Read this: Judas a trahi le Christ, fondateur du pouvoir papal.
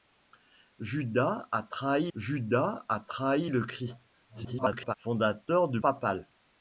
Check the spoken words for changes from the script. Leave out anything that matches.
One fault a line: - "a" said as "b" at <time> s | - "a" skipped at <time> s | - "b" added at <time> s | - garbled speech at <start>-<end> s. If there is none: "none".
- "judas a trahi" added at 2.1 s
- garbled speech at 4.3-4.9 s
- "pouvoir" skipped at 5.8 s